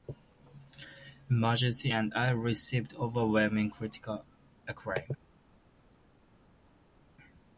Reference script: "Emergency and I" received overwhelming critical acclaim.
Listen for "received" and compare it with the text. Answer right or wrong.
right